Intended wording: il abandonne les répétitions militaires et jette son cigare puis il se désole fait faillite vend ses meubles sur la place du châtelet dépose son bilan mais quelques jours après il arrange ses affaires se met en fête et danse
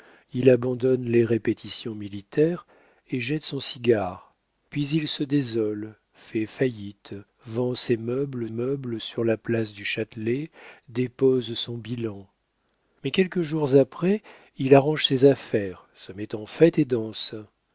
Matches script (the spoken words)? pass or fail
fail